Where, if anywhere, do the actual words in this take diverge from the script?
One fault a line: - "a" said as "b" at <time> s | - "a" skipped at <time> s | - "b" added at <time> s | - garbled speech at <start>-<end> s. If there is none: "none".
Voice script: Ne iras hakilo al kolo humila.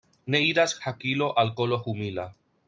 none